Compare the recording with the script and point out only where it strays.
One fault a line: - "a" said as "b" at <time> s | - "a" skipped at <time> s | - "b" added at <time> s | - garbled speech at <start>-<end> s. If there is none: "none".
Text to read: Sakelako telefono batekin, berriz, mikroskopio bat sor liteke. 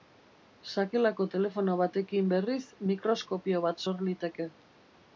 none